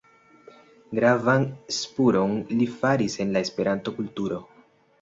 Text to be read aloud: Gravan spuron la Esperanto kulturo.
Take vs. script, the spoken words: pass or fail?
fail